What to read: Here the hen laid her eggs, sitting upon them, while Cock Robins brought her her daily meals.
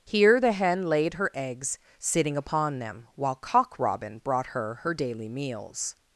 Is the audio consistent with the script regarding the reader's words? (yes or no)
no